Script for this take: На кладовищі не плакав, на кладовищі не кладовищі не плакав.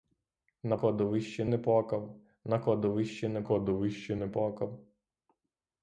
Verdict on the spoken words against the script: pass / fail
pass